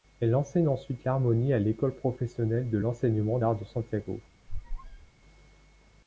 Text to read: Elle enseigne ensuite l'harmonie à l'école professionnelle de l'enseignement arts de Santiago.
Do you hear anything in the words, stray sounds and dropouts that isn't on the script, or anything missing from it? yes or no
yes